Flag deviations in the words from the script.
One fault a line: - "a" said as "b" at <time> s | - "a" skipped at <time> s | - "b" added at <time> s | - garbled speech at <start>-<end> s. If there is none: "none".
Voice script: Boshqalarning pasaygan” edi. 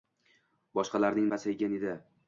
none